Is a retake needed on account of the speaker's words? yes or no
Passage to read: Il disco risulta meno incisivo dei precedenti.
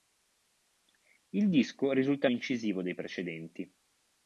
yes